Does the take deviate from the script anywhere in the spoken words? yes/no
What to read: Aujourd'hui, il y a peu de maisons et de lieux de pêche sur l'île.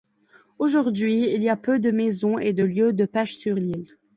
no